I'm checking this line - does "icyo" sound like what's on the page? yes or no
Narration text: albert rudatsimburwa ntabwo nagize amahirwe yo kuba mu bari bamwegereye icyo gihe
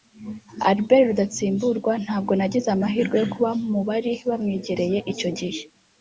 yes